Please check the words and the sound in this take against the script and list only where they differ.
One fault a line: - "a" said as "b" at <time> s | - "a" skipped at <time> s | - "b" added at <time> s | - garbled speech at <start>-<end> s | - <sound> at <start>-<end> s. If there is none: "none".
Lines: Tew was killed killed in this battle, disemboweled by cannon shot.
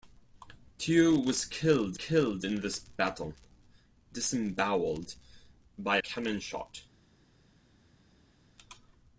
none